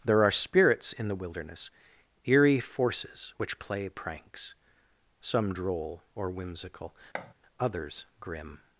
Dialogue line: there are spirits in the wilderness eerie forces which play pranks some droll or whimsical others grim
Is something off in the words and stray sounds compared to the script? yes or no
yes